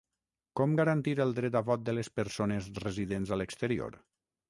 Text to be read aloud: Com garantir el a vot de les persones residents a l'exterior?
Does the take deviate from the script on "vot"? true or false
false